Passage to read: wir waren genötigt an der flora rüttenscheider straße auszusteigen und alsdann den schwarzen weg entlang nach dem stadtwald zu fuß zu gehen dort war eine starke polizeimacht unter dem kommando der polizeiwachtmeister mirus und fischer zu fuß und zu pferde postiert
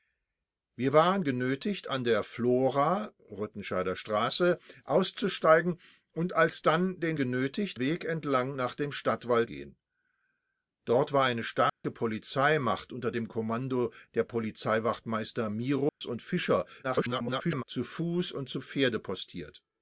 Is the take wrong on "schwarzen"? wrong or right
wrong